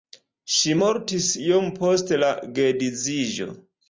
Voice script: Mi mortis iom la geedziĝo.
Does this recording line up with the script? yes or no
no